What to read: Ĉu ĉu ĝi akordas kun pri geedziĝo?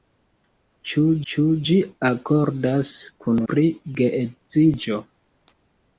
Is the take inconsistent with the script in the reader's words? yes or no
no